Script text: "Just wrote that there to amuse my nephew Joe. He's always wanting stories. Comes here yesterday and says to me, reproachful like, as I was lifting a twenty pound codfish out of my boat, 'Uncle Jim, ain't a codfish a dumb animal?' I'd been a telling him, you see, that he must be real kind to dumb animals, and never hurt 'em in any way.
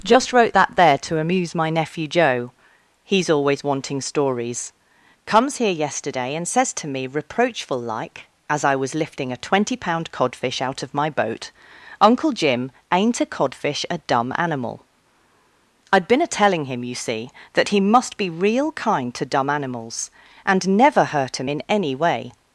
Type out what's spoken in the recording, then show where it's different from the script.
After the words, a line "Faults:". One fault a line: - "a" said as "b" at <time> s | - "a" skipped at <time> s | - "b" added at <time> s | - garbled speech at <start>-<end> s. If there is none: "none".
"Just wrote that there to amuse my nephew Joe. He's always wanting stories. Comes here yesterday and says to me, reproachful like, as I was lifting a twenty pound codfish out of my boat, 'Uncle Jim, ain't a codfish a dumb animal?' I'd been a telling him, you see, that he must be real kind to dumb animals, and never hurt 'em in any way.
Faults:
none